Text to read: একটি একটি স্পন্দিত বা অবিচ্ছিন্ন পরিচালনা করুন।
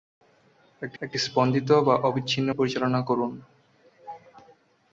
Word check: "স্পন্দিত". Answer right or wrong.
right